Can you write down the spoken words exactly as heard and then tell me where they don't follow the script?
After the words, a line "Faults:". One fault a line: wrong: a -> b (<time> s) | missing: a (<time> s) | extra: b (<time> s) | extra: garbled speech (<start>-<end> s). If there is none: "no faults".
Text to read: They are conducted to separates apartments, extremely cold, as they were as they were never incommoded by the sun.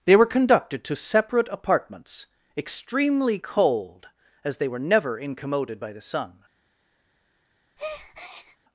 They were conducted to separate apartments, extremely cold, as they were never incommoded by the sun.
Faults:
wrong: are -> were (0.1 s)
wrong: separates -> separate (0.9 s)
missing: as they were (4.8 s)